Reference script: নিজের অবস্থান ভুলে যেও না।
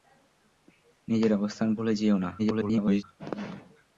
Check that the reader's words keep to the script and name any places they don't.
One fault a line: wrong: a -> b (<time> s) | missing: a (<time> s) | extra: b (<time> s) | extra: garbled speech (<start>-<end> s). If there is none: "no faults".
extra: garbled speech (2.4-3.0 s)